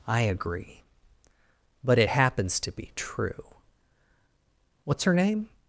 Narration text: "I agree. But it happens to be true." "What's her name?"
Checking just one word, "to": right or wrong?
right